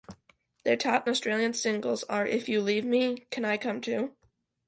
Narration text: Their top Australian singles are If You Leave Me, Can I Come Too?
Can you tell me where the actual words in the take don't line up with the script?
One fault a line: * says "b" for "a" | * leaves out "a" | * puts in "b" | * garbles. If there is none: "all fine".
all fine